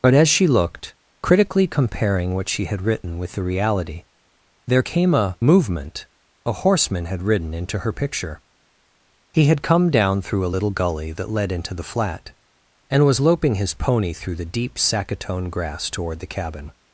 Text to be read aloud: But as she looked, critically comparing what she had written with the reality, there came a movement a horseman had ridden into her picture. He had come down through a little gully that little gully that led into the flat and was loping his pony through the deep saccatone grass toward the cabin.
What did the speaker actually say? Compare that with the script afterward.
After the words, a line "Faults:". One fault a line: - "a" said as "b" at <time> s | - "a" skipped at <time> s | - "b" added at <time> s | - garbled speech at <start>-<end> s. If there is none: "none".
But as she looked, critically comparing what she had written with the reality, there came a movement a horseman had ridden into her picture. He had come down through a little gully that led into the flat and was loping his pony through the deep saccatone grass toward the cabin.
Faults:
- "little gully that" skipped at 11.3 s